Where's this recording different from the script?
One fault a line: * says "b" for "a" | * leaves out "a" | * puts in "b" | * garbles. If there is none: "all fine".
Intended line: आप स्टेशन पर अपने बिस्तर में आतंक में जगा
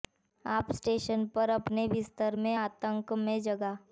all fine